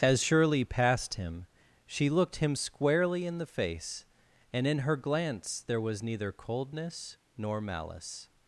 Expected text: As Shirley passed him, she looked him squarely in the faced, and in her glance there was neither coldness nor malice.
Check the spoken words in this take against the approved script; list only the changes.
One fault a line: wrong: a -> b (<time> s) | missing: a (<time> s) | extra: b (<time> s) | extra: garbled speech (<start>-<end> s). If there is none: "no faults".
wrong: faced -> face (3.4 s)